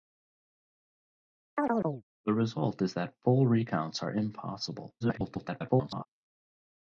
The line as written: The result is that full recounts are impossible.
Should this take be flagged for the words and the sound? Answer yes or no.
yes